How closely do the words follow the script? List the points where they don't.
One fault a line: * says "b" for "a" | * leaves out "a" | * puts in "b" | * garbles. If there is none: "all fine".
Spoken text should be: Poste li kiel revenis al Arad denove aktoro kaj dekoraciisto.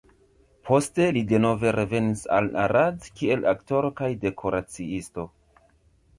* says "denove" for "kiel"
* says "kiel" for "denove"